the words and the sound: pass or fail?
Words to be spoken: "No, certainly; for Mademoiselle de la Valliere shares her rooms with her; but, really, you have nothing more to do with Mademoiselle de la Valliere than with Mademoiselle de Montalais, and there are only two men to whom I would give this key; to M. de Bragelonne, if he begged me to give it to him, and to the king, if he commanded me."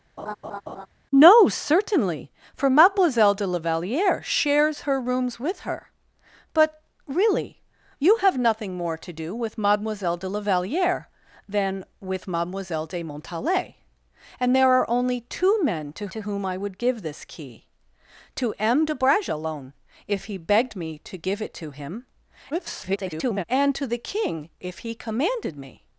fail